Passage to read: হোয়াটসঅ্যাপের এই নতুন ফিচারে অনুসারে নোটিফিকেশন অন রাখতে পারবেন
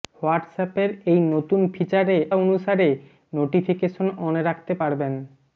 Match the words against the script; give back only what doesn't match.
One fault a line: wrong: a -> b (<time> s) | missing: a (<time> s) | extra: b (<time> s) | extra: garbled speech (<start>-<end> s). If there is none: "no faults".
no faults